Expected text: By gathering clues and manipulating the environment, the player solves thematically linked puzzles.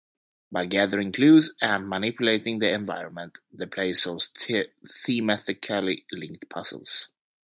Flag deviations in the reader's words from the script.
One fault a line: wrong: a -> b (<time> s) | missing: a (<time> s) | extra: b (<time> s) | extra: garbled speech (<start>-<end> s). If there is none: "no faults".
no faults